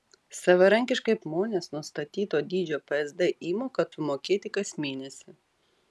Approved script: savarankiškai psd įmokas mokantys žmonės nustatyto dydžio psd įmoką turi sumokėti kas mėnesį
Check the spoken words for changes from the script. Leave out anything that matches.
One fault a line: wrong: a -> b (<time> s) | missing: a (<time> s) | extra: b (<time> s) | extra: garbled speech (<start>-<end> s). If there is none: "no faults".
missing: psd įmokas mokantys (1.1 s)
missing: turi (3.9 s)